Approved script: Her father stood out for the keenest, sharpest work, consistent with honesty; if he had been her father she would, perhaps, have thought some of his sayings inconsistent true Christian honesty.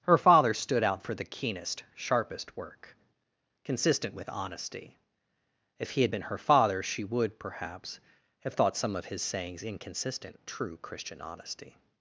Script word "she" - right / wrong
right